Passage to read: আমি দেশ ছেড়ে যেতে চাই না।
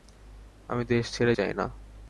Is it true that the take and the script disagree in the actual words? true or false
true